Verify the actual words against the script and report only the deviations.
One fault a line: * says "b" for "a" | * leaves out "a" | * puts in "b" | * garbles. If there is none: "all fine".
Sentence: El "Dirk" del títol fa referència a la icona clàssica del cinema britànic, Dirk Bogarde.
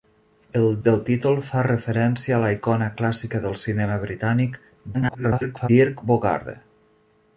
* leaves out "Dirk"
* garbles